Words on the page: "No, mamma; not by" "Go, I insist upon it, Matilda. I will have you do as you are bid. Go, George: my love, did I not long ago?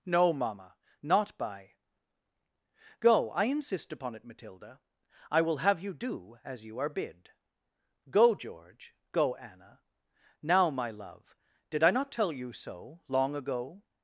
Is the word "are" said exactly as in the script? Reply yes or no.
yes